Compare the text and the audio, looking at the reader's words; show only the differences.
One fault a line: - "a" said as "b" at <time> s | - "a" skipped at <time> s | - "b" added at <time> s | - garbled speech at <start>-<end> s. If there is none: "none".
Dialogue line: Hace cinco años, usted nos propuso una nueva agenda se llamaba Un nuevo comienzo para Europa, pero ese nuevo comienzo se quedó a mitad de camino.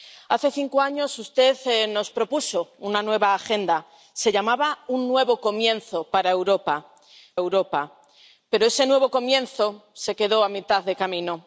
- "Europa" added at 7.4 s